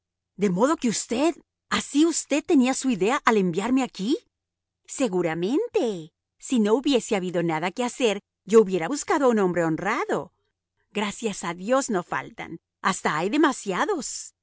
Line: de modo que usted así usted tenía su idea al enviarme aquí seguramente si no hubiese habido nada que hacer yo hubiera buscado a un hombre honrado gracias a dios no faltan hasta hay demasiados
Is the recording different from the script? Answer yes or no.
no